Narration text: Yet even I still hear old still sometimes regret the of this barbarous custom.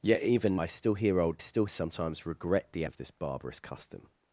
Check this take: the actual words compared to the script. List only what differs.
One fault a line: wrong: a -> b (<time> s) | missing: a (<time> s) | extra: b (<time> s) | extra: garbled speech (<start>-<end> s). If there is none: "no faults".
no faults